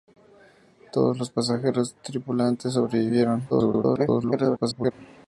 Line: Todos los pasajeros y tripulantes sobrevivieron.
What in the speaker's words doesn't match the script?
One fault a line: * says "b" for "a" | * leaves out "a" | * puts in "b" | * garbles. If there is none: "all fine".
* garbles